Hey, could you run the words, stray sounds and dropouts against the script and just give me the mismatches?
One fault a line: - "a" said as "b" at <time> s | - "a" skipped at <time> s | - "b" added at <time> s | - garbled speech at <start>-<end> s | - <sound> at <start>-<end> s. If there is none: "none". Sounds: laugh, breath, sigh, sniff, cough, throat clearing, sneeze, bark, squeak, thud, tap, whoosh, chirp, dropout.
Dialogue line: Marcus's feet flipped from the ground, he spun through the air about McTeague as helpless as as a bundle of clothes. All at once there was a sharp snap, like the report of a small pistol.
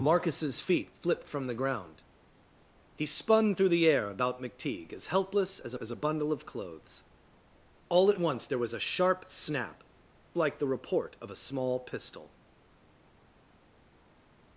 none